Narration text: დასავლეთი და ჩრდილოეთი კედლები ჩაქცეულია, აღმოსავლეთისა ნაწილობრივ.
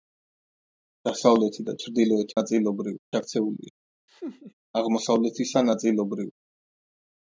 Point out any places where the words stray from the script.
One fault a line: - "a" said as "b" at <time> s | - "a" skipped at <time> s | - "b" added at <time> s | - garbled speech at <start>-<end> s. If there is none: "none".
- "კედლები" said as "ნაწილობრივ" at 2.4 s